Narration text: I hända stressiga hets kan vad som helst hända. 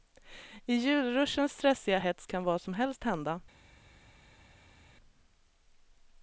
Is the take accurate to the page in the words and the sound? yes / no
no